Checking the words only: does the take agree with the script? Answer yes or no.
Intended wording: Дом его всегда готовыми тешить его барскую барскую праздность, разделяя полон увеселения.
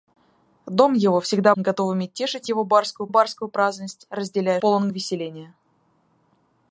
yes